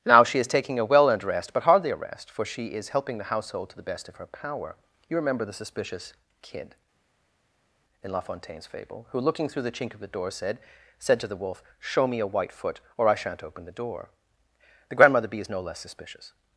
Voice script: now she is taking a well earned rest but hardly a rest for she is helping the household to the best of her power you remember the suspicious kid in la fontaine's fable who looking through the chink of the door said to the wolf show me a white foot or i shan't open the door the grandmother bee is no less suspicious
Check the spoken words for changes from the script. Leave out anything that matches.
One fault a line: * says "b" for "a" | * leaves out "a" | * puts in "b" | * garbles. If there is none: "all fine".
* puts in "said"